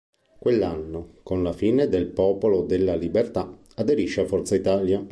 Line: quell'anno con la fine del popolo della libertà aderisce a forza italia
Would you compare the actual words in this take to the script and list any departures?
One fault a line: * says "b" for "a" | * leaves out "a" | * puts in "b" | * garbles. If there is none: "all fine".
all fine